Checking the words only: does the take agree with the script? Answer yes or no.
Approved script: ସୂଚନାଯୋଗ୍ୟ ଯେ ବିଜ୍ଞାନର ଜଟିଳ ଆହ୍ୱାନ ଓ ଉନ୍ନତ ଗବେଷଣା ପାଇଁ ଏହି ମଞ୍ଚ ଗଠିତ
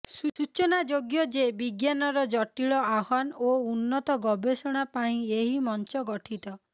yes